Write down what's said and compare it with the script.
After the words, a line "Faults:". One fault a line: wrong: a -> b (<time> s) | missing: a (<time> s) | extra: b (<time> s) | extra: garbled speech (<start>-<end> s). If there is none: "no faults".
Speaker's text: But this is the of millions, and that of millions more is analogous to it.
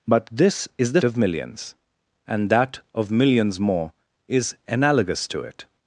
But this is the of millions, and that of millions more is analogous to it.
Faults:
no faults